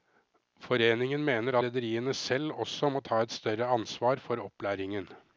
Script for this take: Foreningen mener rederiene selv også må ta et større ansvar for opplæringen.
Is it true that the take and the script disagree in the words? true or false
false